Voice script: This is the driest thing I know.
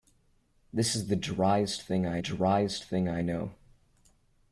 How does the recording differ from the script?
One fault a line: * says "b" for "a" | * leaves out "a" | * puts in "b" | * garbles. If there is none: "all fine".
* puts in "driest thing I"